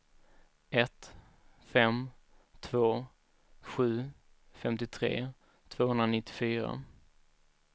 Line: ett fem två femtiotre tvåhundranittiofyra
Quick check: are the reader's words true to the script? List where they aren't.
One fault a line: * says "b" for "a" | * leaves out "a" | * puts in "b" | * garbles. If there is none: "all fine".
* puts in "sju"